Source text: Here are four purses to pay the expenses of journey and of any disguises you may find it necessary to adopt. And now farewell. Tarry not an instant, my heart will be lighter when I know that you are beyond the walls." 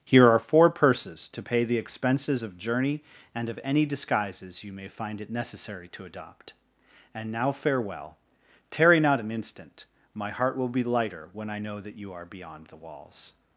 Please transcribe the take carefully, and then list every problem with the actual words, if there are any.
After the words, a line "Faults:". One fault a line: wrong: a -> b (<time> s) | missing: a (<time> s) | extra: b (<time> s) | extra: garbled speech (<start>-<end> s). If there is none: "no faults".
Here are four purses to pay the expenses of journey and of any disguises you may find it necessary to adopt. And now farewell. Tarry not an instant, my heart will be lighter when I know that you are beyond the walls."
Faults:
no faults